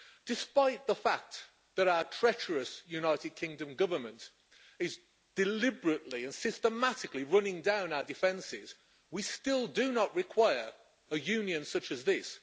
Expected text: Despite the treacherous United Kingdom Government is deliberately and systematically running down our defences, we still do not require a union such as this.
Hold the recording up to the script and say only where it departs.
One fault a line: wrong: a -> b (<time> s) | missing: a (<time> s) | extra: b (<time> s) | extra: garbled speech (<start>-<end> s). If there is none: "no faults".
extra: fact that our (0.9 s)